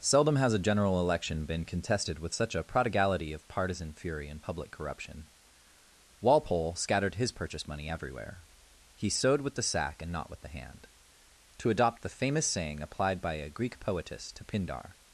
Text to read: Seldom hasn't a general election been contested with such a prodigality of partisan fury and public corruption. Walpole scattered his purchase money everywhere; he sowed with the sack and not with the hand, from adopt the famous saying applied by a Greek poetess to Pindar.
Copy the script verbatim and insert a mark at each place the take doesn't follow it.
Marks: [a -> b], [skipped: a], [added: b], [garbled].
Seldom [hasn't -> has] a general election been contested with such a prodigality of partisan fury and public corruption. Walpole scattered his purchase money everywhere; he sowed with the sack and not with the hand, [from -> to] adopt the famous saying applied by a Greek poetess to Pindar.